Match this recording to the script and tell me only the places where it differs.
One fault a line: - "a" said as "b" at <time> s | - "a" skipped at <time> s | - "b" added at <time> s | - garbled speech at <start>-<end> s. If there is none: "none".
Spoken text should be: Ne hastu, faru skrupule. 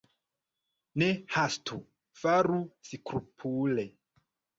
none